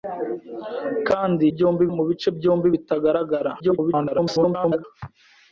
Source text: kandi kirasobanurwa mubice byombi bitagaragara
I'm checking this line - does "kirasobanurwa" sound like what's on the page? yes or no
no